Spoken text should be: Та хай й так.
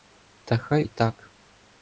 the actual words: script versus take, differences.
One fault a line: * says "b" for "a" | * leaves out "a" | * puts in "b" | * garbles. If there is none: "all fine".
all fine